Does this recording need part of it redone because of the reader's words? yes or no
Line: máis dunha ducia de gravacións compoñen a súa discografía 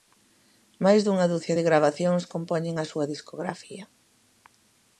no